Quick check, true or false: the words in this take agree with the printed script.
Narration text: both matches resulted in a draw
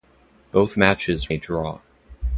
false